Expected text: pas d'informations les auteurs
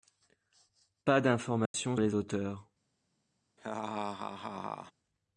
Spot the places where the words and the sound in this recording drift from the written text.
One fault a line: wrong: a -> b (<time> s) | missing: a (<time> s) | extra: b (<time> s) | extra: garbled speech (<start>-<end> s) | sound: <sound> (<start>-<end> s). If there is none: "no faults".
sound: dropout (1.7-1.7 s)
sound: laugh (3.6-4.9 s)